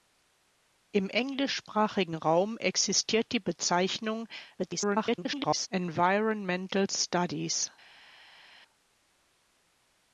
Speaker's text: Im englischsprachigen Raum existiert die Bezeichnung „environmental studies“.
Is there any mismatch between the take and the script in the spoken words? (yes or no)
yes